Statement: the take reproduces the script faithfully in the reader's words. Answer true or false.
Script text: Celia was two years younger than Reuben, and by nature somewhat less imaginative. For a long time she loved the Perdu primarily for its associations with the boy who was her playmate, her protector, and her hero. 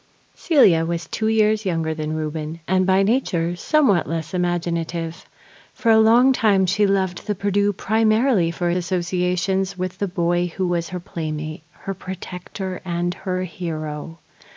false